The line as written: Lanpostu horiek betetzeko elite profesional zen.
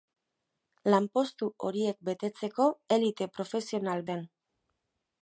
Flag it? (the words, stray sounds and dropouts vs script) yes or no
no